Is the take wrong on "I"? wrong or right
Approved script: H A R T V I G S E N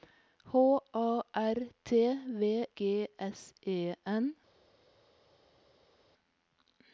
wrong